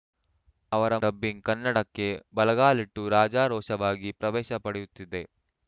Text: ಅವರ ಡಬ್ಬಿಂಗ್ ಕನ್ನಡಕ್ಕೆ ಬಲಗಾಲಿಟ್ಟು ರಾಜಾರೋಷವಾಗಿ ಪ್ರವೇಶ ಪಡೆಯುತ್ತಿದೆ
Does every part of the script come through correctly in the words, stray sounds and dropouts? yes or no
yes